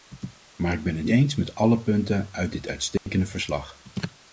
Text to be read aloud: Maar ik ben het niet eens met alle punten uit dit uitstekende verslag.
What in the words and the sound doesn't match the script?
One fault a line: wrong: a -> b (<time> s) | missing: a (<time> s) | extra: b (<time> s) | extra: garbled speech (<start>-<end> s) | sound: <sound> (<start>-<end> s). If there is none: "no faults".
missing: niet (1.1 s)
sound: dropout (3.0-3.1 s)